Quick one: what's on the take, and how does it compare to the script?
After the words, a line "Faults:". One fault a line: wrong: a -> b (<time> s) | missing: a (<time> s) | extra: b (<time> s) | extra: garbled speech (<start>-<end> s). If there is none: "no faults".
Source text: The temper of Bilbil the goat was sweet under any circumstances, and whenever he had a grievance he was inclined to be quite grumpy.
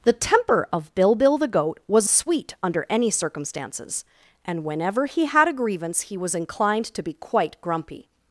The temper of Bilbil the goat was sweet under any circumstances, and whenever he had a grievance he was inclined to be quite grumpy.
Faults:
no faults